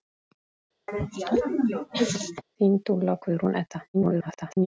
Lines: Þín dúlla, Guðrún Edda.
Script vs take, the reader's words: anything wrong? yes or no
yes